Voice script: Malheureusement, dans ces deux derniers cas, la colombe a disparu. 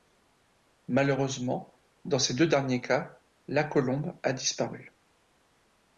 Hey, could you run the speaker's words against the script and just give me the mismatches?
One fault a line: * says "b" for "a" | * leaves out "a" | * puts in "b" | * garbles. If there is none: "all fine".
all fine